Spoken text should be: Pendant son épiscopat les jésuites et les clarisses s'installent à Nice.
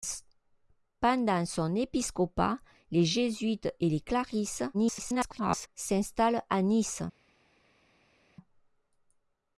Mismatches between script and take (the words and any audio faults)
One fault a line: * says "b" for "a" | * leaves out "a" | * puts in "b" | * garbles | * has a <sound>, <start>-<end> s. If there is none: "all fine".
* garbles